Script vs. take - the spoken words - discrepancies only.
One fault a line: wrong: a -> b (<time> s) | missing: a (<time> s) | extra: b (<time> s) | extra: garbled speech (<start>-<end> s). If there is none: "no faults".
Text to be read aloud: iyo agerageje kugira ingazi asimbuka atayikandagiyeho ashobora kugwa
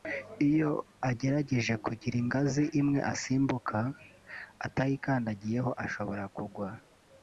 extra: imwe (2.8 s)